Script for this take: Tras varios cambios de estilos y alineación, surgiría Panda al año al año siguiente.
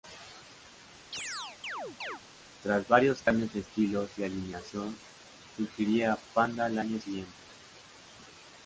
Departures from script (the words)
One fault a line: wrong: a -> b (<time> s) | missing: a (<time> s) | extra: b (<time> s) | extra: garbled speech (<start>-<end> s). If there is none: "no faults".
missing: al año (7.0 s)